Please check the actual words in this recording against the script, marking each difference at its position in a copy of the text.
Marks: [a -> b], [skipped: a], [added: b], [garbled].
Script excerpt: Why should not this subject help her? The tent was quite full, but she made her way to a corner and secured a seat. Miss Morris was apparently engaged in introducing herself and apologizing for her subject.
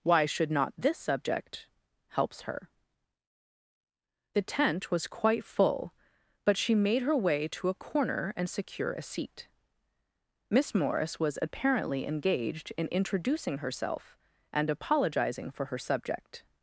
Why should not this subject [help -> helps] her? The tent was quite full, but she made her way to a corner and [secured -> secure] a seat. Miss Morris was apparently engaged in introducing herself and apologizing for her subject.